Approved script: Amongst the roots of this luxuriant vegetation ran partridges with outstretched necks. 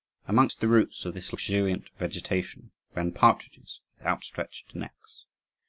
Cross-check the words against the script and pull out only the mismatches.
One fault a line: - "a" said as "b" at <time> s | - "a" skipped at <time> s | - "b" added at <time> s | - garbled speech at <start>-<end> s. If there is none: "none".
none